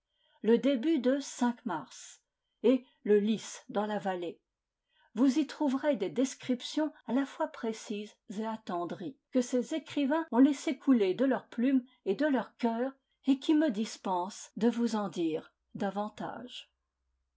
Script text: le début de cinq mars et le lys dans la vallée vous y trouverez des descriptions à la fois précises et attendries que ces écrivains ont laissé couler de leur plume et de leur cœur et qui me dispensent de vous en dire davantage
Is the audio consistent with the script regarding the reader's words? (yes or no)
yes